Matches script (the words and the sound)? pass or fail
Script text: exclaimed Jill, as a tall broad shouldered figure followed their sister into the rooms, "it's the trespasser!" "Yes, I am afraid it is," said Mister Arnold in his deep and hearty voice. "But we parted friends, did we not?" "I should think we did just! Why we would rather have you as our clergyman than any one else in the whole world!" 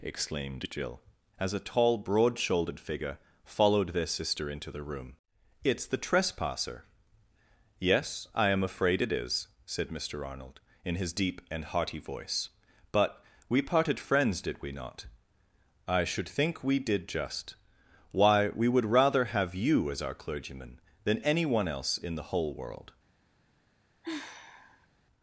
fail